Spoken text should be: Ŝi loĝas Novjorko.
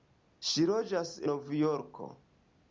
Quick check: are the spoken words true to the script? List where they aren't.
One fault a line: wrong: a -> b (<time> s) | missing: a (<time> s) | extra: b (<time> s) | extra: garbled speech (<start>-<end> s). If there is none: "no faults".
no faults